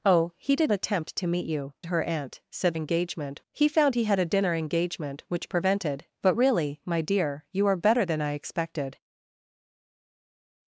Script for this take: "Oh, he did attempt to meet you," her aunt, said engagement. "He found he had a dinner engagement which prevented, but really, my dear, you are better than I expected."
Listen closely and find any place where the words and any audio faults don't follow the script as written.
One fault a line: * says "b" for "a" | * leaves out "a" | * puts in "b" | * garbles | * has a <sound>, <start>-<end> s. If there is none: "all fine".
all fine